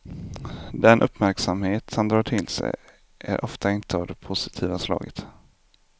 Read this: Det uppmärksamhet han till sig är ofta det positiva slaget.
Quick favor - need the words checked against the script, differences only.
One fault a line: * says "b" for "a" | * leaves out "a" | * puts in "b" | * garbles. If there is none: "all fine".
* says "Den" for "Det"
* puts in "drar"
* puts in "inte av"